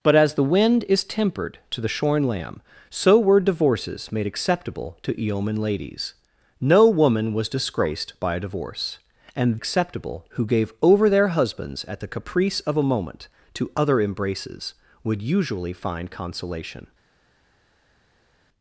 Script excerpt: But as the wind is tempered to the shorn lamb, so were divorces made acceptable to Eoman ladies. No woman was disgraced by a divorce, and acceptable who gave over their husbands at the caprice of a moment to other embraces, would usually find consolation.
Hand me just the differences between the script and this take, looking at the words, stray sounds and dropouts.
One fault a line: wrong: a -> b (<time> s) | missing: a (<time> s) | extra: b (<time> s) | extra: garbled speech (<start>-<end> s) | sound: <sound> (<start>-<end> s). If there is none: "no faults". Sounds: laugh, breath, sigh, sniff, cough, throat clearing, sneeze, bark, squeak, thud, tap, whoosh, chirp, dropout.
no faults